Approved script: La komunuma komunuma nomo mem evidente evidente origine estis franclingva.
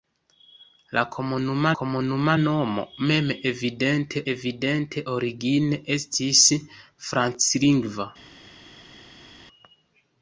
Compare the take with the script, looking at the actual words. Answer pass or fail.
pass